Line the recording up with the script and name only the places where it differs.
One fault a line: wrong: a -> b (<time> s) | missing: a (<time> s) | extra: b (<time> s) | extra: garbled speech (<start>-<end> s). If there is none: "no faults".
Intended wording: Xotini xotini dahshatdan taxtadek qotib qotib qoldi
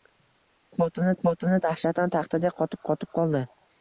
no faults